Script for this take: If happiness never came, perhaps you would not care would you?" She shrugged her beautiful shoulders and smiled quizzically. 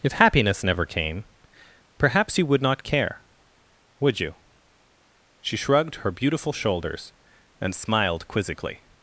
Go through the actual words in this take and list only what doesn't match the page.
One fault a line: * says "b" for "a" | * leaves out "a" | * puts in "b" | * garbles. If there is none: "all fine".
all fine